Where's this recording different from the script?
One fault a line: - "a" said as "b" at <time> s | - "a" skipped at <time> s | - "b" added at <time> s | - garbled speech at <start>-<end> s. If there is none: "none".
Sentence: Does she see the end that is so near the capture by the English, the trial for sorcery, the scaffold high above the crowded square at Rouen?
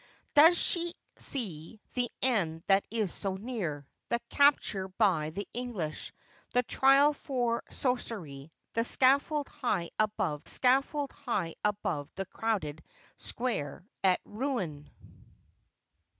- "scaffold high above" added at 10.4 s